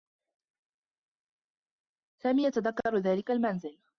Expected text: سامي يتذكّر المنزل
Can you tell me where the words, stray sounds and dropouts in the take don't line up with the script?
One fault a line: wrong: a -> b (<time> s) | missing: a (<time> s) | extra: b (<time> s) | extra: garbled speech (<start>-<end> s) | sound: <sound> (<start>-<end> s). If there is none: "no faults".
extra: ذلك (3.0 s)